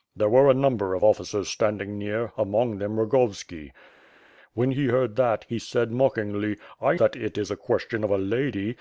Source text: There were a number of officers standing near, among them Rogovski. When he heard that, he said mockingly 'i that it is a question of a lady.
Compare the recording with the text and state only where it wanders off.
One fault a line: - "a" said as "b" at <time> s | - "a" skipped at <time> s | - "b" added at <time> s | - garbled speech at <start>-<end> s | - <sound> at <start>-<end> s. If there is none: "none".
none